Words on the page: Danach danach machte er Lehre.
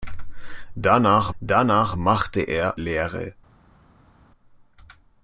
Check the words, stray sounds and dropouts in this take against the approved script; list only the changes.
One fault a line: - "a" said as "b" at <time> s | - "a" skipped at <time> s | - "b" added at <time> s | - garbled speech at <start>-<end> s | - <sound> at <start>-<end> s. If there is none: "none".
none